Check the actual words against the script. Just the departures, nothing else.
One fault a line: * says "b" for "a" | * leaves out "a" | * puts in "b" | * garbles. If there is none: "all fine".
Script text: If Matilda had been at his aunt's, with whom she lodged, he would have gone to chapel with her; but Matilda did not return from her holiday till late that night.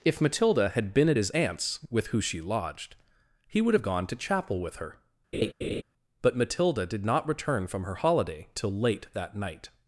* says "who" for "whom"